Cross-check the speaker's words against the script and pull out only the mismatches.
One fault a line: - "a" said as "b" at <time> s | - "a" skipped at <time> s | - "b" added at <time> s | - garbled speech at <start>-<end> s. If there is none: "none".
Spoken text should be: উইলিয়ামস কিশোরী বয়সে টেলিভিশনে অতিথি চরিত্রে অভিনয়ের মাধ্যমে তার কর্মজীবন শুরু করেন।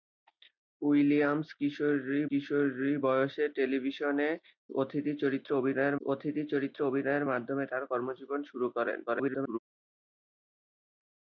- "কিশোরী" added at 2.3 s
- "অতিথি চরিত্রে অভিনয়ের" added at 6.0 s
- garbled speech at 9.1-9.6 s